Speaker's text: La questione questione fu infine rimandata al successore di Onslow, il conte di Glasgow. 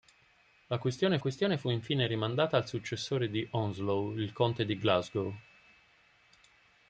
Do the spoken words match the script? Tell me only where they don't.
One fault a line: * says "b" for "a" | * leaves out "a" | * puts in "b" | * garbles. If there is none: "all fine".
all fine